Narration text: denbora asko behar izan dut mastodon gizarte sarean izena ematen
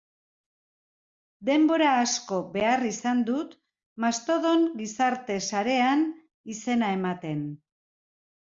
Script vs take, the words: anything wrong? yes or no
no